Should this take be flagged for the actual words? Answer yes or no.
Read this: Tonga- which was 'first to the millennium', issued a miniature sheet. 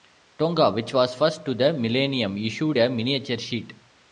no